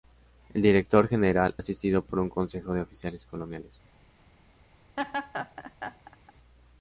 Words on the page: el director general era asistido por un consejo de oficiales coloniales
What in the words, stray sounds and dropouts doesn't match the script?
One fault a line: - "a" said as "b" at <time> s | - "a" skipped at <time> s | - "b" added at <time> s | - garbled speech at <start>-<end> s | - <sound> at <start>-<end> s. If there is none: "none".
- "era" skipped at 1.6 s
- laugh at 5.0-6.3 s